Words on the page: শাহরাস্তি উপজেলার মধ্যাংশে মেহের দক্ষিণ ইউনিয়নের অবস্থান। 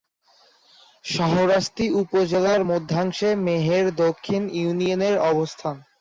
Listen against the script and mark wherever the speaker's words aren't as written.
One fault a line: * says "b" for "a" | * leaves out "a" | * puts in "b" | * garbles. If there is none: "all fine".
all fine